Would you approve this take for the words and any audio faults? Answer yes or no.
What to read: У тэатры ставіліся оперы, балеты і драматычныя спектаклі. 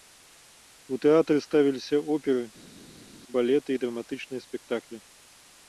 yes